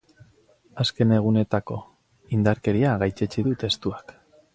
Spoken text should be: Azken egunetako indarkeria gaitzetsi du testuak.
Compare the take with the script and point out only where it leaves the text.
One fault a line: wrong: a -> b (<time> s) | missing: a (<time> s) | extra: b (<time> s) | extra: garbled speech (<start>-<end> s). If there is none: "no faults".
no faults